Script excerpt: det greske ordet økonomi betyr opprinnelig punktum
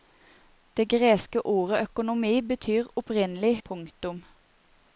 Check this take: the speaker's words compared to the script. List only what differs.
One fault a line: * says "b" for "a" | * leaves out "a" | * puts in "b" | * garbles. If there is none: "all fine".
all fine